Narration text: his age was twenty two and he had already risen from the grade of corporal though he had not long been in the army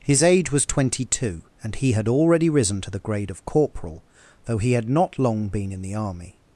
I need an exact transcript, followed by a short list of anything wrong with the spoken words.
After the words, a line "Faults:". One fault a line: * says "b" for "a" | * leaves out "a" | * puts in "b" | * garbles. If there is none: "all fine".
his age was twenty two and he had already risen to the grade of corporal though he had not long been in the army
Faults:
* says "to" for "from"